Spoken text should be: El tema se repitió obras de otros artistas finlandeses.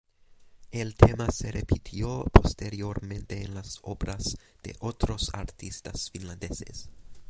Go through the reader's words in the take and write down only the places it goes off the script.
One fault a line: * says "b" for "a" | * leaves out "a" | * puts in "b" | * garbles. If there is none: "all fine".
* puts in "posteriormente en las"